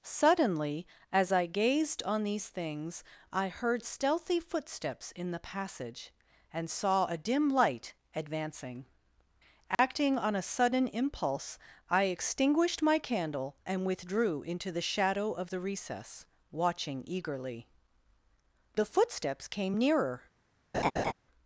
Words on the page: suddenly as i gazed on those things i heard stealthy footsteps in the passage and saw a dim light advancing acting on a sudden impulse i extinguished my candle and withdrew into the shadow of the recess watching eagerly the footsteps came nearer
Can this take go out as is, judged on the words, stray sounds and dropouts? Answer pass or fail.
fail